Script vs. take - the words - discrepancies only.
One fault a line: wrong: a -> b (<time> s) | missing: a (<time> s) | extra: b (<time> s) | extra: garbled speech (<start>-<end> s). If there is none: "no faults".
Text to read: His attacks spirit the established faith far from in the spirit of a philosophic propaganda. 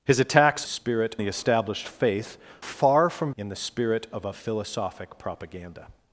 no faults